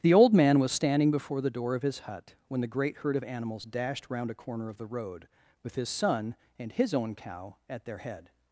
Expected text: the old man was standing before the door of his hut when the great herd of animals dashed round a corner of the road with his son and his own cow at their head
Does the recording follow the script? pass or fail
pass